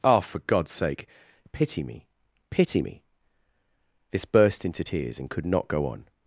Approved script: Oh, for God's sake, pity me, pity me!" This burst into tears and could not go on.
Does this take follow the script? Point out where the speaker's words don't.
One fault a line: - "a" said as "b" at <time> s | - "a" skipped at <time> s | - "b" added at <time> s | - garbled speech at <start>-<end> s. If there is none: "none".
none